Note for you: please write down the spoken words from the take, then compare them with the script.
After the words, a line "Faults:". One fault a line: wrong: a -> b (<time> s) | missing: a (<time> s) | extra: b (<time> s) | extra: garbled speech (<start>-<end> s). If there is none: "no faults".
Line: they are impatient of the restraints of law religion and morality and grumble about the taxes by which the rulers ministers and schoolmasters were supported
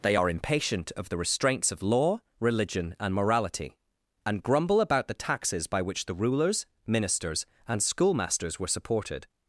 they are impatient of the restraints of law religion and morality and grumble about the taxes by which the rulers ministers and schoolmasters were supported
Faults:
no faults